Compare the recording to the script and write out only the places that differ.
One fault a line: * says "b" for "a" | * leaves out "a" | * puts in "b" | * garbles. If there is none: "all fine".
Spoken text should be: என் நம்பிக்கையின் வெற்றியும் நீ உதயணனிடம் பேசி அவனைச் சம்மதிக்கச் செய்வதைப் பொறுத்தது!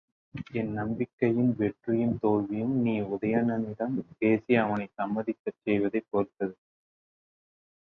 * puts in "தோல்வியும்"